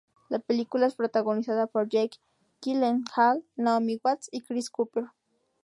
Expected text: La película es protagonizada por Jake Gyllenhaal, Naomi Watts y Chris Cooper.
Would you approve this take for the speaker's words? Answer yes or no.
yes